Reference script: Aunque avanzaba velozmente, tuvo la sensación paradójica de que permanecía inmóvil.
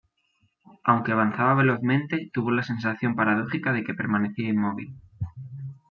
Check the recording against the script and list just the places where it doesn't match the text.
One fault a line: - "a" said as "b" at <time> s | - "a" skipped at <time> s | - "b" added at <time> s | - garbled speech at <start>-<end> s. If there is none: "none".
none